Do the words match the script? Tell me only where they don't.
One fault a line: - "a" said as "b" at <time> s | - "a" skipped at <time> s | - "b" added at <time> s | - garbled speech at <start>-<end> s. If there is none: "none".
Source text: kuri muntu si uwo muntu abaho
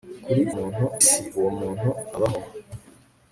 none